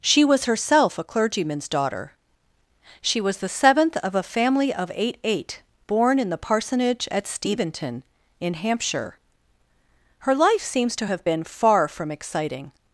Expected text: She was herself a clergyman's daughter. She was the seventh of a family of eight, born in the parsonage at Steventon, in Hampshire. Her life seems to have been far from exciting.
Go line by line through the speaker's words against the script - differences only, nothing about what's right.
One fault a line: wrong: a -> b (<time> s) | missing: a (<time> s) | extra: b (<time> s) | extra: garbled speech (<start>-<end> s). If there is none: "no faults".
extra: eight (5.2 s)